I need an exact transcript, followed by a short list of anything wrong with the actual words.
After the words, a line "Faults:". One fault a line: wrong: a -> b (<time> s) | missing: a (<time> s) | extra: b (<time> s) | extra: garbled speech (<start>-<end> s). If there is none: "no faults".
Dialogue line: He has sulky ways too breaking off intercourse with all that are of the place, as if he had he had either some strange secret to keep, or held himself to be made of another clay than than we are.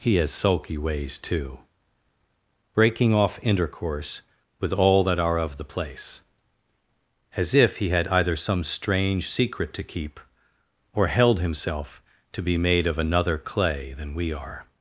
He has sulky ways too breaking off intercourse with all that are of the place, as if he had either some strange secret to keep, or held himself to be made of another clay than we are.
Faults:
missing: he had (8.1 s)
missing: than (14.1 s)